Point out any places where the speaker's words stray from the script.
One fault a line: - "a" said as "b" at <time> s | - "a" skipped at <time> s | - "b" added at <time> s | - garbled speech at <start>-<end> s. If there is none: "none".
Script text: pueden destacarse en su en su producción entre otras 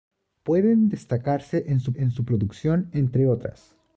none